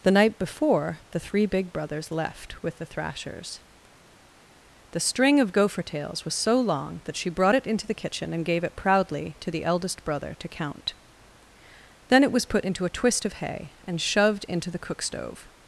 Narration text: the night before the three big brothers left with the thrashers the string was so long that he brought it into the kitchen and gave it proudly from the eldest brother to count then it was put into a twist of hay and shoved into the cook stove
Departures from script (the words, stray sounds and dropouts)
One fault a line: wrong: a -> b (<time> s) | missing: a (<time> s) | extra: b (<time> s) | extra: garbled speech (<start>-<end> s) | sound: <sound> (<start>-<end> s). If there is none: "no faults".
extra: of gopher tails (5.4 s)
wrong: he -> she (7.2 s)
wrong: from -> to (9.4 s)